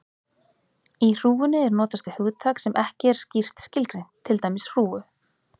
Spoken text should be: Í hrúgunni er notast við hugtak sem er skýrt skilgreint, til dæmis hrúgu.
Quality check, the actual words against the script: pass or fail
fail